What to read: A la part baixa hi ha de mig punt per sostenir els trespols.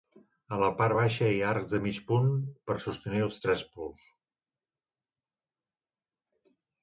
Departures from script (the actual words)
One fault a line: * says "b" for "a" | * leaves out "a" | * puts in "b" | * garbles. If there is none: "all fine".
* puts in "arcs"